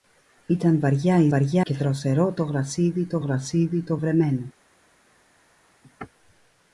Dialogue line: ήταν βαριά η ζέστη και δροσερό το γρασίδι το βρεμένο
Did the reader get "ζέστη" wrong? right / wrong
wrong